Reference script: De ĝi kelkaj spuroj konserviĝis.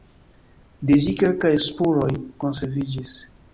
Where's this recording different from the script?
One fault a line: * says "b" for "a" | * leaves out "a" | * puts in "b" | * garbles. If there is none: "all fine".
all fine